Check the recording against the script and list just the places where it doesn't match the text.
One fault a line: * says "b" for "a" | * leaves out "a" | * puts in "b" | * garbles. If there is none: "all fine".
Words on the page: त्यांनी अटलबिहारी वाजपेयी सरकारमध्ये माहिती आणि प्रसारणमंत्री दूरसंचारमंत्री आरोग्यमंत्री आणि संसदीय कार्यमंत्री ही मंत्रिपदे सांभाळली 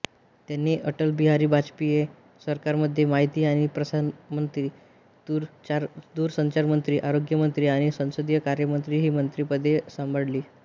all fine